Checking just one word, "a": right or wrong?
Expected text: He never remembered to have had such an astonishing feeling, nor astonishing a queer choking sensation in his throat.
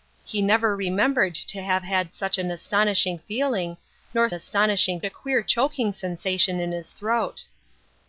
right